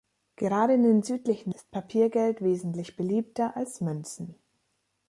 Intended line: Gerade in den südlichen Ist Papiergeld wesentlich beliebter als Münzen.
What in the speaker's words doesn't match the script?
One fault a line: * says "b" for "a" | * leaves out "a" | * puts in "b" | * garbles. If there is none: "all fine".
all fine